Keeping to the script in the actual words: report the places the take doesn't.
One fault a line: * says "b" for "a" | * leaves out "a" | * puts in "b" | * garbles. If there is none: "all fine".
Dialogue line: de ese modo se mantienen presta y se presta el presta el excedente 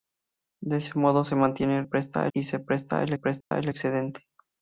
all fine